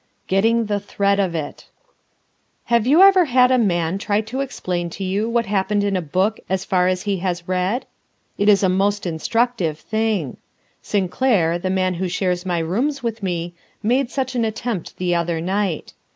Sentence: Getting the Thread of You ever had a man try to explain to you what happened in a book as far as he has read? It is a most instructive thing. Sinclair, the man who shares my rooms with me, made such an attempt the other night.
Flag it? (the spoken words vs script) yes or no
yes